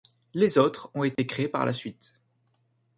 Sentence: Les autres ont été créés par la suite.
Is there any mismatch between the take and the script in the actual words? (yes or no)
no